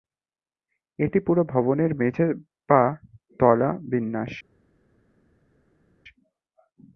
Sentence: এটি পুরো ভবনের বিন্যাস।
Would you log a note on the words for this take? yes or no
yes